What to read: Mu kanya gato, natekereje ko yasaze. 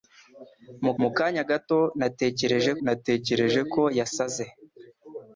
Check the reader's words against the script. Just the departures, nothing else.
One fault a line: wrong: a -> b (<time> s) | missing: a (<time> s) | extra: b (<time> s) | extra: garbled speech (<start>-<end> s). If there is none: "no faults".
extra: mu (1.0 s)
extra: natekereje (2.8 s)